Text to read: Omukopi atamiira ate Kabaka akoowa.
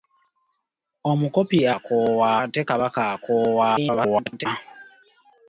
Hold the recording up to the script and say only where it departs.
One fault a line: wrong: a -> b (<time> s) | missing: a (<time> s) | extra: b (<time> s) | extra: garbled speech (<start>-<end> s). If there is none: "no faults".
wrong: atamiira -> akoowa (1.8 s)
extra: garbled speech (3.7-4.5 s)